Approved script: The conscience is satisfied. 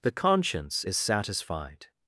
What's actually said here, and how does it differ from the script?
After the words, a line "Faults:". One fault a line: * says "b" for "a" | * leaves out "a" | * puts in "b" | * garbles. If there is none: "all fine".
The conscience is satisfied.
Faults:
all fine